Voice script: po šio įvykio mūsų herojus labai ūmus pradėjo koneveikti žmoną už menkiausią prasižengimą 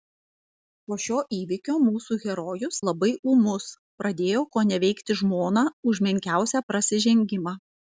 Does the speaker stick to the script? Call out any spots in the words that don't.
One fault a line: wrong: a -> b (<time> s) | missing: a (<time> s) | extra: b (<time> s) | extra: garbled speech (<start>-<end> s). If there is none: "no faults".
no faults